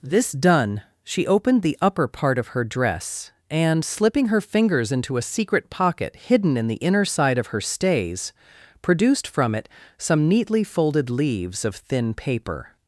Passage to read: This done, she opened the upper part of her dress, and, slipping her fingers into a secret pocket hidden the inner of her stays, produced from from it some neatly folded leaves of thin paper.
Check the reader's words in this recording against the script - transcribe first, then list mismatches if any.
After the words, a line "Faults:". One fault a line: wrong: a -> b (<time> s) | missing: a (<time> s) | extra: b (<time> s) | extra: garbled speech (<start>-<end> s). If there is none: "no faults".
This done, she opened the upper part of her dress, and, slipping her fingers into a secret pocket hidden in the inner side of her stays, produced from it some neatly folded leaves of thin paper.
Faults:
extra: in (6.6 s)
extra: side (7.0 s)
missing: from (9.5 s)